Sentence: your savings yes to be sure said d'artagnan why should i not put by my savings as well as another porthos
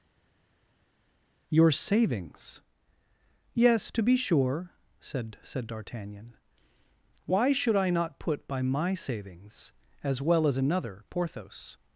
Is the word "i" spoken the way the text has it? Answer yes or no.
yes